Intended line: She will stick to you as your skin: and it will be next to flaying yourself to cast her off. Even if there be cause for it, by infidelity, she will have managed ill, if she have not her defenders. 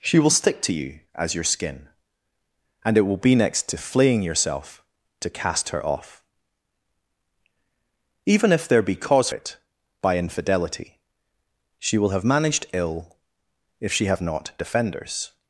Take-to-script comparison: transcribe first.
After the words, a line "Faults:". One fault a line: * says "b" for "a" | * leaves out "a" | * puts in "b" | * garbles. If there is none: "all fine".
She will stick to you as your skin: and it will be next to flaying yourself to cast her off. Even if there be cause it, by infidelity, she will have managed ill, if she have not defenders.
Faults:
* leaves out "for"
* leaves out "her"